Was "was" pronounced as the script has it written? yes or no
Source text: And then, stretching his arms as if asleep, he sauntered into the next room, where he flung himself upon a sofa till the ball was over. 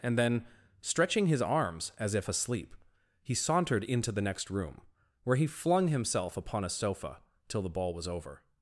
yes